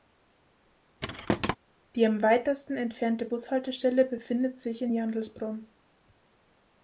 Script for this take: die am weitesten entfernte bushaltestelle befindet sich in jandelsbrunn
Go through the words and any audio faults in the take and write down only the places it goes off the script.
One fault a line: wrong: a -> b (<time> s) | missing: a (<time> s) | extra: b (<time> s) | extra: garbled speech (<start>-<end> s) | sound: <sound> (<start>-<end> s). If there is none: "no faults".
sound: thud (1.0-1.6 s)